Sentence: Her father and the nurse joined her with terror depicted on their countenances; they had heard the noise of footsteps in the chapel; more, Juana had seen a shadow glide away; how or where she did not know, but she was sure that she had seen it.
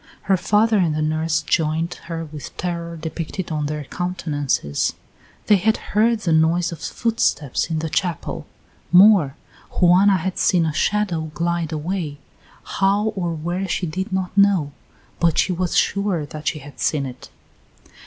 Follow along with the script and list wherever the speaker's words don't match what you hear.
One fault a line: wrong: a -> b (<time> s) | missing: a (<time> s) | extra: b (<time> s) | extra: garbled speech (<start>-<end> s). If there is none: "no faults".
no faults